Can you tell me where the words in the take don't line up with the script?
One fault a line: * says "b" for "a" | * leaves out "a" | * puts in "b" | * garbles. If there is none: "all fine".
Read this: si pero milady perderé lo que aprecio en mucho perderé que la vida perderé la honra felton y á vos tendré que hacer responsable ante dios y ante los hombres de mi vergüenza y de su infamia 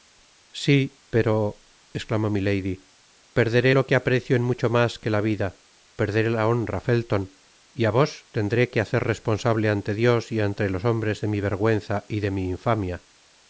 * puts in "esclamó"
* says "mas" for "perderé"
* says "mi" for "su"